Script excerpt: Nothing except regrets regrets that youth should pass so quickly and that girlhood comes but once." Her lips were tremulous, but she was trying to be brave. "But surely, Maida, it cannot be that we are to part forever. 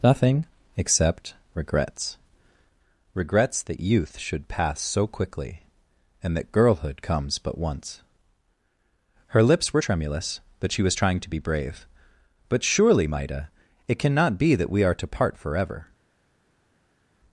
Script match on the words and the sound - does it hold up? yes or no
yes